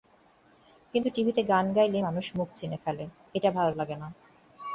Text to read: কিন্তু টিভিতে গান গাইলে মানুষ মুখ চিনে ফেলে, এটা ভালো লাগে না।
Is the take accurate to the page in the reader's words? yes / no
yes